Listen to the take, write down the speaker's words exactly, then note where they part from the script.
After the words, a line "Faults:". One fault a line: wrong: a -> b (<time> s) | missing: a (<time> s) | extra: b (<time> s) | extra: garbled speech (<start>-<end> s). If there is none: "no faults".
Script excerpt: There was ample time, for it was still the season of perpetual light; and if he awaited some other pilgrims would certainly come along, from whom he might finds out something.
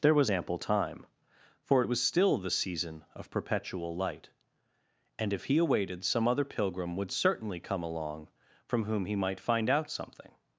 There was ample time, for it was still the season of perpetual light; and if he awaited some other pilgrim would certainly come along, from whom he might find out something.
Faults:
wrong: pilgrims -> pilgrim (6.4 s)
wrong: finds -> find (9.4 s)